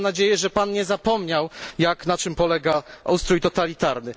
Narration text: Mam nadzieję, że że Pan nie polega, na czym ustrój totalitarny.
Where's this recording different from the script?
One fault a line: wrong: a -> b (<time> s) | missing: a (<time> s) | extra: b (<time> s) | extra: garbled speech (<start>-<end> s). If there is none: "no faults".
missing: że (0.5 s)
wrong: polega -> zapomniał (0.8 s)
extra: polega (2.3 s)